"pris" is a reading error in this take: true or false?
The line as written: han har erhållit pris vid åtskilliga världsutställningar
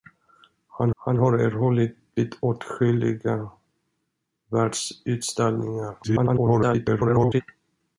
true